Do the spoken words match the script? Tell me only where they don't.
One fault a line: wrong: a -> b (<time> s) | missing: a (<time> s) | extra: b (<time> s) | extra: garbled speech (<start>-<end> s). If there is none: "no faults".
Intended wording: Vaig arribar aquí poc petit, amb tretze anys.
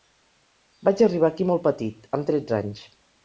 wrong: poc -> molt (1.5 s)